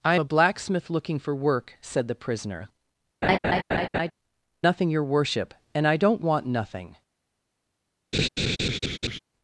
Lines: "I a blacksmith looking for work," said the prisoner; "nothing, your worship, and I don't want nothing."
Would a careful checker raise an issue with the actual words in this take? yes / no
no